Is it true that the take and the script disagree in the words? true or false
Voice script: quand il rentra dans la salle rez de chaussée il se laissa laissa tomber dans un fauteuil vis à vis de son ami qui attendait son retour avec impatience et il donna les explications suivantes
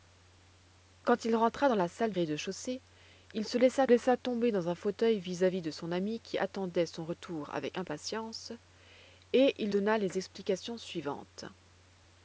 false